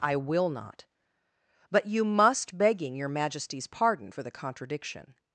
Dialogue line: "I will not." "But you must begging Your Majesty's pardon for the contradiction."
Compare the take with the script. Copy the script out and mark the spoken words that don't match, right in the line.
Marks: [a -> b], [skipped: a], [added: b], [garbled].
"I will not." "But you must begging Your Majesty's pardon for the contradiction."